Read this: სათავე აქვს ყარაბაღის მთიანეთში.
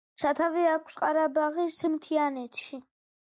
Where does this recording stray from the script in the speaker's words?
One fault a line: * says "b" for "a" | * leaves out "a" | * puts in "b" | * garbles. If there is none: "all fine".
all fine